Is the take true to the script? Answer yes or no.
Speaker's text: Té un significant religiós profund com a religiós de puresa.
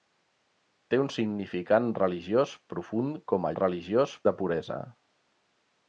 yes